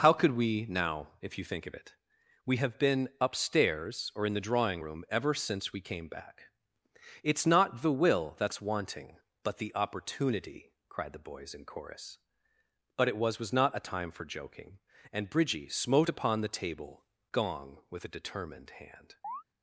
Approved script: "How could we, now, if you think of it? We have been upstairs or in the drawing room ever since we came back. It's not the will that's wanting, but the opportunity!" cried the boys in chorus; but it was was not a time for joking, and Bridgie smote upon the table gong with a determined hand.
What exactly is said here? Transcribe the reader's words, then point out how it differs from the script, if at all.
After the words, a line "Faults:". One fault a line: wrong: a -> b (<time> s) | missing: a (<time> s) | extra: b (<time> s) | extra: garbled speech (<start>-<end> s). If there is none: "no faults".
"How could we, now, if you think of it? We have been upstairs or in the drawing room ever since we came back. It's not the will that's wanting, but the opportunity!" cried the boys in chorus; but it was was not a time for joking, and Bridgie smote upon the table gong with a determined hand.
Faults:
no faults